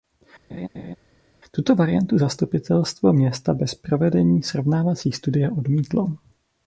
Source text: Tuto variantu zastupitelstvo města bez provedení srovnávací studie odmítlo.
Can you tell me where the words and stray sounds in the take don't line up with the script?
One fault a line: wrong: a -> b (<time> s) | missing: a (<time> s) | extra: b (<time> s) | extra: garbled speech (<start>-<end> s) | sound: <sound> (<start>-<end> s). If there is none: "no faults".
sound: laugh (0.5-1.0 s)